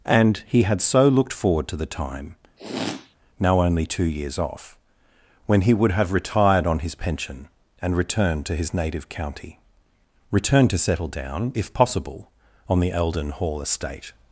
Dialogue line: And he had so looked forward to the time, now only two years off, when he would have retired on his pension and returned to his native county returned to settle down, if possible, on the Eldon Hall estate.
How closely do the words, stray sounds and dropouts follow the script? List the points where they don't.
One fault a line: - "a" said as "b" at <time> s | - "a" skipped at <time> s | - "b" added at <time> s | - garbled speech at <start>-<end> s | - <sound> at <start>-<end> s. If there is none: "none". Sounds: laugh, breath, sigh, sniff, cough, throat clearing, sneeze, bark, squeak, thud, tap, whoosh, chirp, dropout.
- sniff at 2.6-3.2 s